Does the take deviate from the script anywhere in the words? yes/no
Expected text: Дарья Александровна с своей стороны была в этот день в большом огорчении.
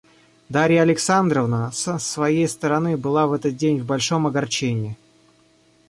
no